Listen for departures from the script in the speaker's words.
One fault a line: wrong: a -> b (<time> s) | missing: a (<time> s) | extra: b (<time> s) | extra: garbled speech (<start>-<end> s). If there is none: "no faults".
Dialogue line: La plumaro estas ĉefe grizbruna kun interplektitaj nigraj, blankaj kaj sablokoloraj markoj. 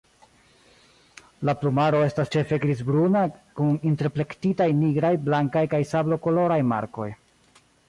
no faults